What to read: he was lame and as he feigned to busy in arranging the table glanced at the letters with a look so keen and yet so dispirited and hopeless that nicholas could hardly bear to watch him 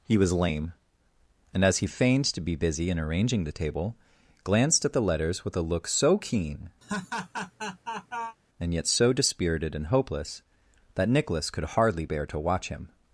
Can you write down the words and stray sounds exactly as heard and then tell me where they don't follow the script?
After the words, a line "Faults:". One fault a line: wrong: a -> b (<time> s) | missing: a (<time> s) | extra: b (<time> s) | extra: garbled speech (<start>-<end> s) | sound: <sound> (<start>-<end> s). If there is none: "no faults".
he was lame and as he feigned to be busy in arranging the table glanced at the letters with a look so keen and yet so dispirited and hopeless that nicholas could hardly bear to watch him
Faults:
extra: be (2.4 s)
sound: laugh (6.8-8.4 s)